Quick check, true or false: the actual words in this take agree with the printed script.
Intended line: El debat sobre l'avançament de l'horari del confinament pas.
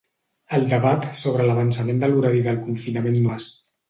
true